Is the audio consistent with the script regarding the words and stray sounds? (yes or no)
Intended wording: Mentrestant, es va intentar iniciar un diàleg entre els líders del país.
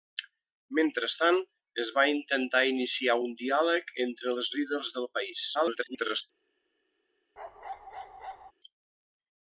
no